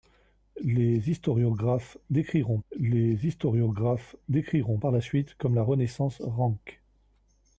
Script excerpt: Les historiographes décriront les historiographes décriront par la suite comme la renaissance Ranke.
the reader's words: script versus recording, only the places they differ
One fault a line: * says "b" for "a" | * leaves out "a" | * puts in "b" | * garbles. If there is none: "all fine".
all fine